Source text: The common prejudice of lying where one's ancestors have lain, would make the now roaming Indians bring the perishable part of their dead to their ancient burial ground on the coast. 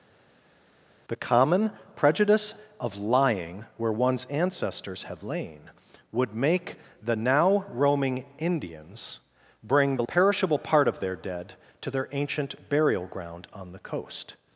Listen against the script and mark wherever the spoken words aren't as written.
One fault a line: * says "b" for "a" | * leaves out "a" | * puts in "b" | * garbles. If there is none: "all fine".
all fine